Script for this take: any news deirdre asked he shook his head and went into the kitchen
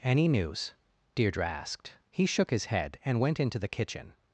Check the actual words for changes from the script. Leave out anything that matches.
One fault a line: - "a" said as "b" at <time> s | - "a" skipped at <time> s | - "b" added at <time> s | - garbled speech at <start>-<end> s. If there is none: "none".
none